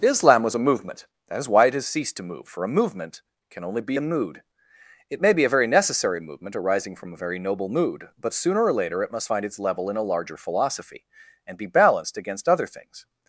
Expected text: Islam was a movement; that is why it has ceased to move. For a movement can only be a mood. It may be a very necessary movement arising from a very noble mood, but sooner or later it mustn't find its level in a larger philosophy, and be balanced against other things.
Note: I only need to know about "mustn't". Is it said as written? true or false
false